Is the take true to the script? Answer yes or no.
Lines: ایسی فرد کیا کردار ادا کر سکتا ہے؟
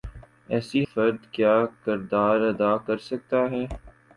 yes